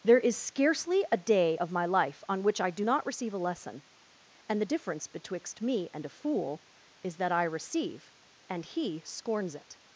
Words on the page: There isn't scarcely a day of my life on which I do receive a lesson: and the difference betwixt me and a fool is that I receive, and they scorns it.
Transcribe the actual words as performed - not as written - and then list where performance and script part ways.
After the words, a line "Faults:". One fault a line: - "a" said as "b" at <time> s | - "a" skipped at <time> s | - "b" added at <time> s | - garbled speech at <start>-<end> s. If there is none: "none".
There is scarcely a day of my life on which I do not receive a lesson: and the difference betwixt me and a fool is that I receive, and he scorns it.
Faults:
- "isn't" said as "is" at 0.2 s
- "not" added at 2.8 s
- "they" said as "he" at 8.6 s